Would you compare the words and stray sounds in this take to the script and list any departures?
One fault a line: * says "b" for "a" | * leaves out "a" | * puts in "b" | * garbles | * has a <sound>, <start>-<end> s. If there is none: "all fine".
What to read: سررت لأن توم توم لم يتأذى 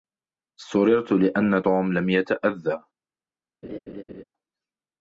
* leaves out "توم"
* has a laugh, 3.6-4.2 s